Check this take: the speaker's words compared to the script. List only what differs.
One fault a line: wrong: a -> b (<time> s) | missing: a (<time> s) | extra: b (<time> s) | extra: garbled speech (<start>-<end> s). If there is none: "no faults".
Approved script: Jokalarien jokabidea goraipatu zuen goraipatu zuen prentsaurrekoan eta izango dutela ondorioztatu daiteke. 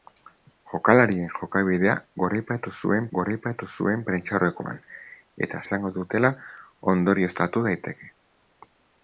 no faults